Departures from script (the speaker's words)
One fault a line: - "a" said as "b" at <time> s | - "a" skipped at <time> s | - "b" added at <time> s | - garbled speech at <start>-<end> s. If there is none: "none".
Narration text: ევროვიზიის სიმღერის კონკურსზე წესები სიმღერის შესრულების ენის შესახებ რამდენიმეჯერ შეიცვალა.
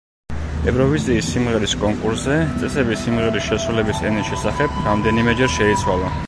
none